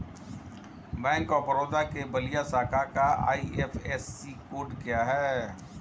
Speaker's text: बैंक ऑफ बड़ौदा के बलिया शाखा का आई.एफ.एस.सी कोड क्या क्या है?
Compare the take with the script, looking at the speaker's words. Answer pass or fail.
fail